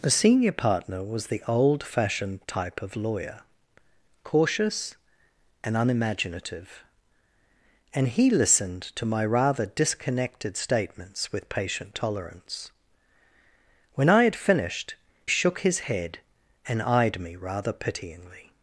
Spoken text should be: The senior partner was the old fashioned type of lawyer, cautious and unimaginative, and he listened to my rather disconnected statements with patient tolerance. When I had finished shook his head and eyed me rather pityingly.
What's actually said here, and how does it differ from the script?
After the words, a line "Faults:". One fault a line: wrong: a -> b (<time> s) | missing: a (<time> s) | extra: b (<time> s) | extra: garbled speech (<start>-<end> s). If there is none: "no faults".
The senior partner was the old fashioned type of lawyer, cautious and unimaginative, and he listened to my rather disconnected statements with patient tolerance. When I had finished shook his head and eyed me rather pityingly.
Faults:
no faults